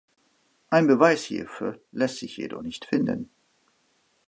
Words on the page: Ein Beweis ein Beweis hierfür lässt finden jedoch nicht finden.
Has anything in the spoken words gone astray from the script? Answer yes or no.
yes